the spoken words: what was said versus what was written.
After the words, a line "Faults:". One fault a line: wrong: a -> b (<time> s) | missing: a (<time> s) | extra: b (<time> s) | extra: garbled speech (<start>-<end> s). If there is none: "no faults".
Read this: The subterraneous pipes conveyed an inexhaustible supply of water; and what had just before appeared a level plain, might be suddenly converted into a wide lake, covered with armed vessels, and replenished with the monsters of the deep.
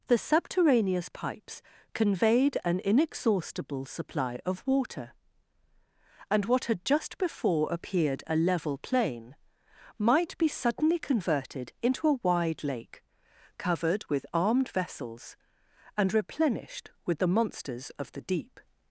The subterraneous pipes conveyed an inexhaustible supply of water; and what had just before appeared a level plain, might be suddenly converted into a wide lake, covered with armed vessels, and replenished with the monsters of the deep.
Faults:
no faults